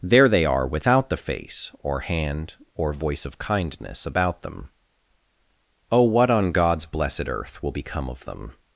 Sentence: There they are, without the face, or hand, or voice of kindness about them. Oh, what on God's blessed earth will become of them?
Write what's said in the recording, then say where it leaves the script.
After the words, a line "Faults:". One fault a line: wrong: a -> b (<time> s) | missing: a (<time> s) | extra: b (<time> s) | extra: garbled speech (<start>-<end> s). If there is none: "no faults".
There they are, without the face, or hand, or voice of kindness about them. Oh, what on God's blessed earth will become of them?
Faults:
no faults